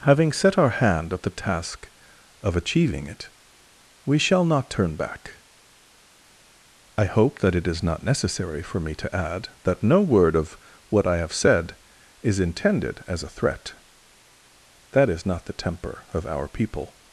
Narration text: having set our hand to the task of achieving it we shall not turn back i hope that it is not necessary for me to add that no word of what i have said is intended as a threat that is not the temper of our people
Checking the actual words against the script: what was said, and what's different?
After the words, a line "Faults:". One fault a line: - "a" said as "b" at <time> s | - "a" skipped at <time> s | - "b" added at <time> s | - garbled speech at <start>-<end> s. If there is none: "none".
having set our hand at the task of achieving it we shall not turn back i hope that it is not necessary for me to add that no word of what i have said is intended as a threat that is not the temper of our people
Faults:
- "to" said as "at" at 1.1 s